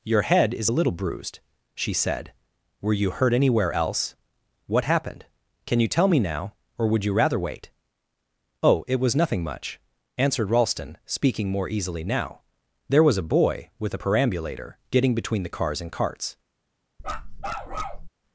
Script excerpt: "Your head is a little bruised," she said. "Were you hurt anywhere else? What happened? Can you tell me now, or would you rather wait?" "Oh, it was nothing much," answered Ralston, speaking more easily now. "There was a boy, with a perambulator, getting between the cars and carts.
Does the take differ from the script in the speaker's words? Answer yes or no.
no